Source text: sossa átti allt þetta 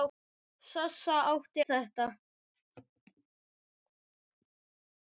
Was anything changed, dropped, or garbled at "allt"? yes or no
yes